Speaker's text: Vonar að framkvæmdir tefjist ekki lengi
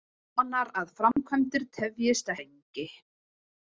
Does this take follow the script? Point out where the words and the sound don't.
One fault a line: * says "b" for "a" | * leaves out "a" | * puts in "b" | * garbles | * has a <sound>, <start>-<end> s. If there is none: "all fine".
* has a dropout, 1.1-1.2 s
* leaves out "ekki"